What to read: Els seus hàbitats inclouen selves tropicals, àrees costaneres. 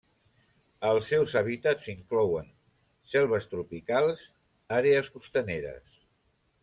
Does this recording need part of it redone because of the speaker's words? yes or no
no